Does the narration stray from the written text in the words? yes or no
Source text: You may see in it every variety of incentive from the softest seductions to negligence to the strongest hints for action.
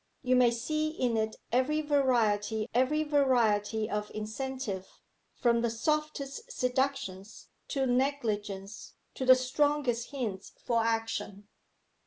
yes